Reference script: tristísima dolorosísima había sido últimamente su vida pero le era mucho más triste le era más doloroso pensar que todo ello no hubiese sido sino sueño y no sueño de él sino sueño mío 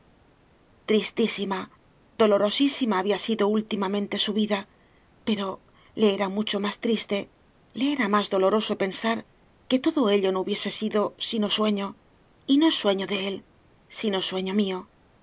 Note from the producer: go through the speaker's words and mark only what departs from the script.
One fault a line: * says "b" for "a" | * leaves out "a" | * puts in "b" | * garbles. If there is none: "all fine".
all fine